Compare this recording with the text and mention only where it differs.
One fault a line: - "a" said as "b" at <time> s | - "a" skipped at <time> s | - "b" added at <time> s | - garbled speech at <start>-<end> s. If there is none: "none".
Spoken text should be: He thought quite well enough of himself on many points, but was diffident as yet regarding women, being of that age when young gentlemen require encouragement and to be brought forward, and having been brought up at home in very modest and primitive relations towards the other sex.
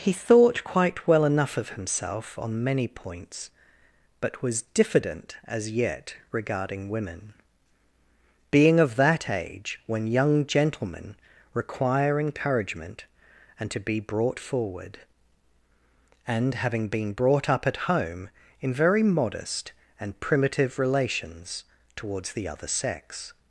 none